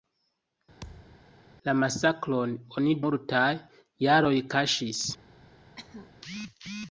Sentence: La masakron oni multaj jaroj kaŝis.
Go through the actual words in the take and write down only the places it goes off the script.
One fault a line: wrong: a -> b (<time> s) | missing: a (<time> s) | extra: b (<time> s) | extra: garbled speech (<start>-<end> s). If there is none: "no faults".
no faults